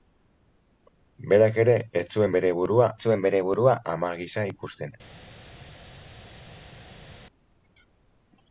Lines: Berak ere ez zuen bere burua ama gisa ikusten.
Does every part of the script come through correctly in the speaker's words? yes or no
no